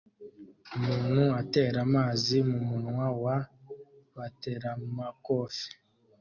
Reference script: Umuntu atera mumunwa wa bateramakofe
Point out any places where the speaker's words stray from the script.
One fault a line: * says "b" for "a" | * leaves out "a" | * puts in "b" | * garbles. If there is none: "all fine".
* puts in "amazi"